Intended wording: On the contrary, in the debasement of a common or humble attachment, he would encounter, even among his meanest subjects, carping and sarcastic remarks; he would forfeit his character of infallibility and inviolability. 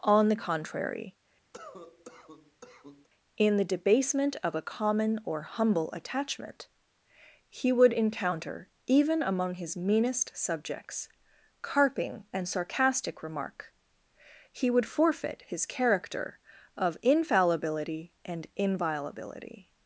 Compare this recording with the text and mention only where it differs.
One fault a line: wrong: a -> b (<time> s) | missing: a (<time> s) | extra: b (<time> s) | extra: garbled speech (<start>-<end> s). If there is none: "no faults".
wrong: remarks -> remark (13.2 s)